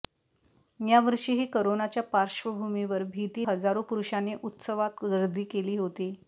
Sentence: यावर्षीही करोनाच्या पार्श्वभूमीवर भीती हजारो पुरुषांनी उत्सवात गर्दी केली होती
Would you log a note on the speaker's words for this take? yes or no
no